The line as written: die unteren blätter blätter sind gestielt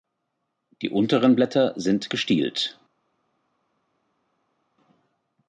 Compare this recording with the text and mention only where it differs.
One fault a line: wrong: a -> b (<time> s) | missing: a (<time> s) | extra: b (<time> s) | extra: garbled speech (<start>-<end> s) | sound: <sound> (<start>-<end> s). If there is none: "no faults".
missing: blätter (1.7 s)